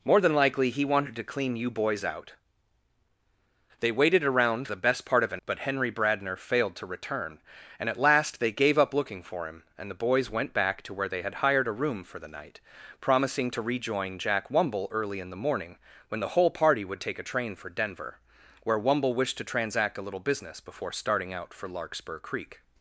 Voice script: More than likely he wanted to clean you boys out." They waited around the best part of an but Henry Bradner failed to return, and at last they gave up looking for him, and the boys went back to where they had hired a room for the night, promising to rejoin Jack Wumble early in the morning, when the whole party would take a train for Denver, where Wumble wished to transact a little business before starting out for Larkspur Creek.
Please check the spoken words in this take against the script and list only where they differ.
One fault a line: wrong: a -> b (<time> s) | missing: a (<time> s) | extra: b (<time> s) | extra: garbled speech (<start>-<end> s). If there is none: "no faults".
no faults